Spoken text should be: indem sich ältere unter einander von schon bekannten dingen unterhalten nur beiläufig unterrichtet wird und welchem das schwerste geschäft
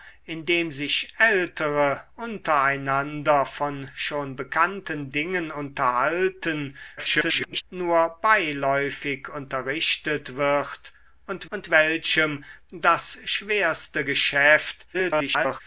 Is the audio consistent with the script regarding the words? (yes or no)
no